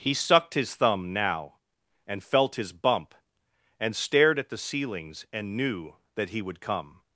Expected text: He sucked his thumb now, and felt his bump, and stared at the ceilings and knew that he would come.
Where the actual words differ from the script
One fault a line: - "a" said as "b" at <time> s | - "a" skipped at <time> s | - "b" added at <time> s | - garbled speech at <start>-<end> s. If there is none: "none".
none